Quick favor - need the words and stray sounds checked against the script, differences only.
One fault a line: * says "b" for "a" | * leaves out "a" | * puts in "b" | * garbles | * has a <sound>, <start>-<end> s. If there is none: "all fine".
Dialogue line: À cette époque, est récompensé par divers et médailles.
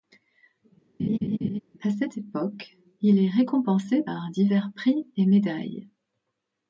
* has a laugh, 1.0-1.6 s
* puts in "il"
* puts in "prix"